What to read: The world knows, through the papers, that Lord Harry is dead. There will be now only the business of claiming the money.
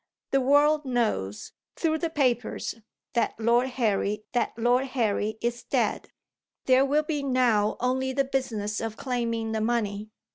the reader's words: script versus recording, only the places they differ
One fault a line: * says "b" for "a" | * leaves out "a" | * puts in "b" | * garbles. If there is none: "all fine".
* puts in "that Lord Harry"